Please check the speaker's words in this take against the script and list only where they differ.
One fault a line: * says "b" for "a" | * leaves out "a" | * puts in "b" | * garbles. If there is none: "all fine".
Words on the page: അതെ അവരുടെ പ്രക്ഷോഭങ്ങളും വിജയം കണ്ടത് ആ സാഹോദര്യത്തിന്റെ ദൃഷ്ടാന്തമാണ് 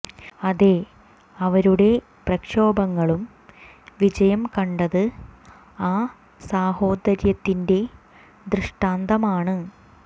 all fine